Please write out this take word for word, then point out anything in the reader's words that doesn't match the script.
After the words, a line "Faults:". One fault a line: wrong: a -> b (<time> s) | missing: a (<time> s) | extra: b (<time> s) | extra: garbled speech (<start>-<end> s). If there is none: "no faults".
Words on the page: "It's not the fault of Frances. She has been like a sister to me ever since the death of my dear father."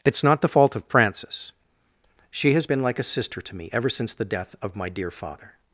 "It's not the fault of Frances. She has been like a sister to me ever since the death of my dear father."
Faults:
no faults